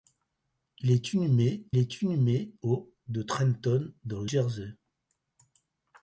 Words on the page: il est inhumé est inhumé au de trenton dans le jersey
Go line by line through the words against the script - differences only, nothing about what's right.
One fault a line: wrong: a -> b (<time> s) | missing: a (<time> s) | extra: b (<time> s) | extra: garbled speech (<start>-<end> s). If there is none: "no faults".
no faults